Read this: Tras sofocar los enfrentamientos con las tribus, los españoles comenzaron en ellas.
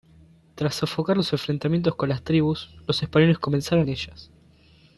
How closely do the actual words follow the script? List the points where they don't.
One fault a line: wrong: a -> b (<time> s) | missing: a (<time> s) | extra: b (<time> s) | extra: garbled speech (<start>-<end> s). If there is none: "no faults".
no faults